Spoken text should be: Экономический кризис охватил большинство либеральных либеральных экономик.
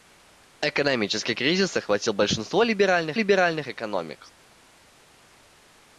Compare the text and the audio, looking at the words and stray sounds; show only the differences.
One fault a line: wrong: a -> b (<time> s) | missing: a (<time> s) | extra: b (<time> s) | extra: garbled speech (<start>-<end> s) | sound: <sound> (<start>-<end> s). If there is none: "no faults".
no faults